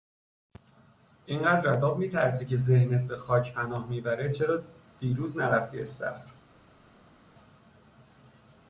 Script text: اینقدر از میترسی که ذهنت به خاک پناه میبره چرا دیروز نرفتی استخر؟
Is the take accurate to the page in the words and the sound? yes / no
no